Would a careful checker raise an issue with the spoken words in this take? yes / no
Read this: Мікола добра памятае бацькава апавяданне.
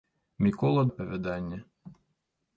yes